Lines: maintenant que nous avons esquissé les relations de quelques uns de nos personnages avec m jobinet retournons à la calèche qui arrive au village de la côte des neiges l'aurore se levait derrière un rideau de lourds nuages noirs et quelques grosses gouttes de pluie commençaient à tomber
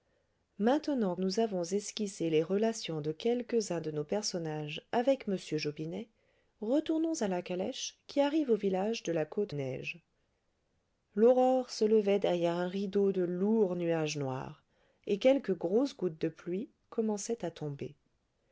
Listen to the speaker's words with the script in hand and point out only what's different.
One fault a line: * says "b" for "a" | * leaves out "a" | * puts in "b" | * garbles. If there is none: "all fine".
* leaves out "que"
* leaves out "des"